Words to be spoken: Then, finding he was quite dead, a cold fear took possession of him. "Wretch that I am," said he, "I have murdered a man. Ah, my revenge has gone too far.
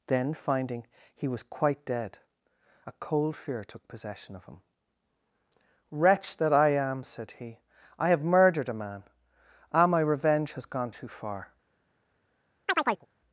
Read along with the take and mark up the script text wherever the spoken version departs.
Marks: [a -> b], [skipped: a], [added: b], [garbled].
Then, finding he was quite dead, a cold fear took possession of him. "Wretch that I am," said he, "I have murdered a man. Ah, my revenge has gone too far.